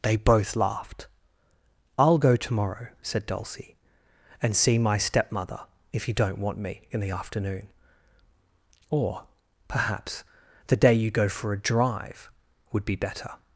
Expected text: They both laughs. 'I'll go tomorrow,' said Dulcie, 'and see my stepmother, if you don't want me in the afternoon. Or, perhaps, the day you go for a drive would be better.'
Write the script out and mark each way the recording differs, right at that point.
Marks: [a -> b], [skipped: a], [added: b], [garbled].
They both [laughs. -> laughed] 'I'll go tomorrow,' said Dulcie, 'and see my stepmother, if you don't want me in the afternoon. Or, perhaps, the day you go for a drive would be better.'